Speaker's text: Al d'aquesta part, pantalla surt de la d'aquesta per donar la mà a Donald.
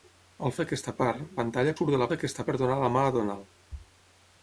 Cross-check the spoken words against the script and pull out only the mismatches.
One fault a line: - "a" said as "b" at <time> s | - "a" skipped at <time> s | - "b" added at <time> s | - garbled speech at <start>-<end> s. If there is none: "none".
none